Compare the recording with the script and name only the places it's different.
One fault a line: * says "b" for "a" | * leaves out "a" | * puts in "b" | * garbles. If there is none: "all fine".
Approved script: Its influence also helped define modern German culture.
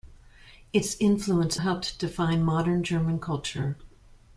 * leaves out "also"